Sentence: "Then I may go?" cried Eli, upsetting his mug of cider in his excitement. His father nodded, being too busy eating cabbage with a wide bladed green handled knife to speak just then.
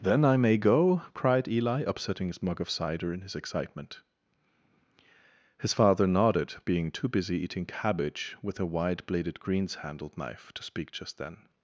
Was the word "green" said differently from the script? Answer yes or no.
yes